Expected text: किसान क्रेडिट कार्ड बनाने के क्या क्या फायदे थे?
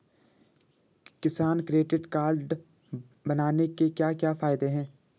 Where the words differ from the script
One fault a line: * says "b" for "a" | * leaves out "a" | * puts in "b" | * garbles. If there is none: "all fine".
* says "हैं" for "थे"